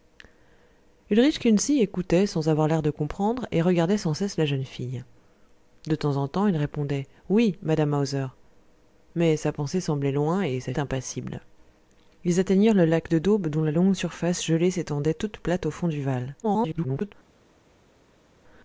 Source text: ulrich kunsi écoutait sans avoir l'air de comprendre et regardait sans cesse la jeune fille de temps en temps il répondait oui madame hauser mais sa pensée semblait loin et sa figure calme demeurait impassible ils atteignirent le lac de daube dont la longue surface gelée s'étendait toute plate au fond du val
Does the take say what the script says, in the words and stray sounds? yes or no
no